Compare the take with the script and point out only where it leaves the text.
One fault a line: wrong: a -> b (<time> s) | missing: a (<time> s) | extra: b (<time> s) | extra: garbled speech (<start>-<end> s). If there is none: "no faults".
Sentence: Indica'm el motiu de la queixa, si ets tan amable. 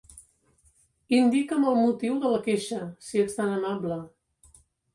no faults